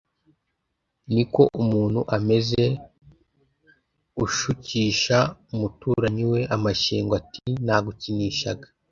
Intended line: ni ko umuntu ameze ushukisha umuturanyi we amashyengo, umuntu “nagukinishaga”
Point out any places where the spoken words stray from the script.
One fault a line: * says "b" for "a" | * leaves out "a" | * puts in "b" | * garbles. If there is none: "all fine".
* says "ati" for "umuntu"